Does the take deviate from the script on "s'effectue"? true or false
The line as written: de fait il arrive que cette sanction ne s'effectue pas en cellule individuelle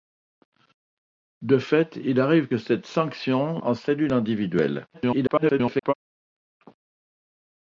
true